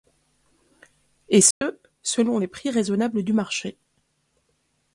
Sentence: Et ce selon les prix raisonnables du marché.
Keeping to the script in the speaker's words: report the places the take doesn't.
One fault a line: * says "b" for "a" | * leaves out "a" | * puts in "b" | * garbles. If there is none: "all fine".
all fine